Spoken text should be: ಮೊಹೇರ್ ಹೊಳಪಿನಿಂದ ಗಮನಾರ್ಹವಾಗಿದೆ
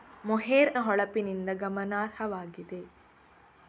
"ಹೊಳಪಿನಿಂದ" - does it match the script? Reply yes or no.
yes